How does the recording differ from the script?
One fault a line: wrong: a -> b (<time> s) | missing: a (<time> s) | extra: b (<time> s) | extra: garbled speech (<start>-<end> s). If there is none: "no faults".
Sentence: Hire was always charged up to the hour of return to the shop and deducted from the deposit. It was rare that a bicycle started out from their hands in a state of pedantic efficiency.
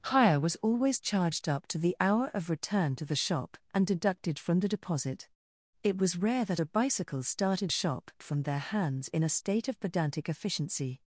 wrong: out -> shop (7.7 s)